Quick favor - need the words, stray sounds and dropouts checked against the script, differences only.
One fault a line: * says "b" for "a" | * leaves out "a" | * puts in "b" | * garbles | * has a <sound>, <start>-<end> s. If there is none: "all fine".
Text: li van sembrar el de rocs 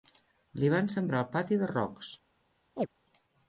* puts in "pati"
* has a chirp, 2.8-2.9 s